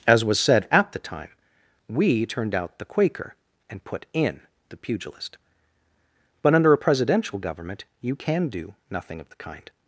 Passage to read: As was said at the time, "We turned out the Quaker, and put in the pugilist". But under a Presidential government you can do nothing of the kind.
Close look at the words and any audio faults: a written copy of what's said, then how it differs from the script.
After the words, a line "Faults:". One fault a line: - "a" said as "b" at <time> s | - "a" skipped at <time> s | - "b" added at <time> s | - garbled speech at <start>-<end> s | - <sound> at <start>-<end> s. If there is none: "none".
As was said at the time, "We turned out the Quaker, and put in the pugilist". But under a Presidential government you can do nothing of the kind.
Faults:
none